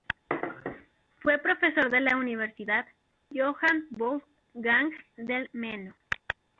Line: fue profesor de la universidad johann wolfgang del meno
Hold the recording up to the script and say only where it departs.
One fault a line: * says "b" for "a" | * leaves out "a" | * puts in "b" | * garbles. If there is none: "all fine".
all fine